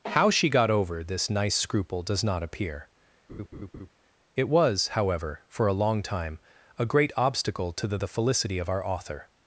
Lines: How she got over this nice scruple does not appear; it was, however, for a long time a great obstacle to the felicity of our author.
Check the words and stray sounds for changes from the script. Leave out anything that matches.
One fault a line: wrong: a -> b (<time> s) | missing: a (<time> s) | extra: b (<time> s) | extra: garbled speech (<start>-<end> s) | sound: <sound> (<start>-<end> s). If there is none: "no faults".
sound: laugh (3.3-3.9 s)
extra: the (8.0 s)